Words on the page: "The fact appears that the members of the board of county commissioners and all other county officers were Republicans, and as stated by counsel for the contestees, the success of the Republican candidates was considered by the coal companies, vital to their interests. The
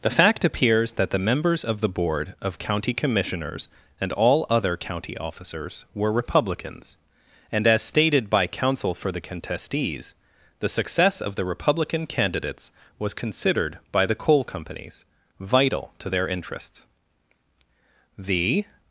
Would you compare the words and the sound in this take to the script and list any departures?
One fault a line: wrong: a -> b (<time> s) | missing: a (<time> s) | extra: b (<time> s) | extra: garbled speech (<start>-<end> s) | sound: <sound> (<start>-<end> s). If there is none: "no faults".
no faults